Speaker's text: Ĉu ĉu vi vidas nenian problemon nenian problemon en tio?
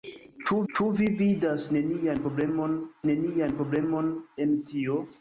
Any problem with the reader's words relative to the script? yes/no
no